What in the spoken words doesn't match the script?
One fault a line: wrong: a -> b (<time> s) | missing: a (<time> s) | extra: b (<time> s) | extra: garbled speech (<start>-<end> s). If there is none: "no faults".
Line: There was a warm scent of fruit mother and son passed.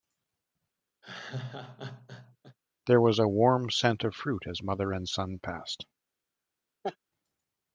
extra: as (4.5 s)